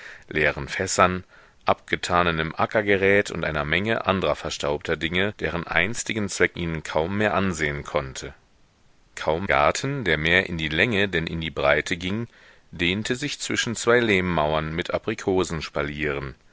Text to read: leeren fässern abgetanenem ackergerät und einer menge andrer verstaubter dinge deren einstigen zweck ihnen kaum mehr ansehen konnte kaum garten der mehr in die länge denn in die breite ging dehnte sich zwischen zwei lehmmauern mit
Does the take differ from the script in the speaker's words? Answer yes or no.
no